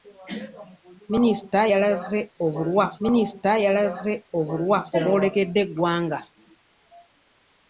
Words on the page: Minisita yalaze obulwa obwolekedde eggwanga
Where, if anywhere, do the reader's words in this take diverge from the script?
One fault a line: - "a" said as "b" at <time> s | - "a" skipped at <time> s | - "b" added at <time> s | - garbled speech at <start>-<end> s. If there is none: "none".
- "minisita yalaze obulwa" added at 3.0 s